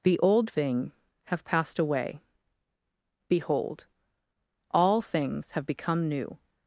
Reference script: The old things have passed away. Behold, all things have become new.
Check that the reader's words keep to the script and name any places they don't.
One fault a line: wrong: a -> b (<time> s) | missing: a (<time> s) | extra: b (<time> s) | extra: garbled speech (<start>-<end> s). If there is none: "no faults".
wrong: things -> thing (0.5 s)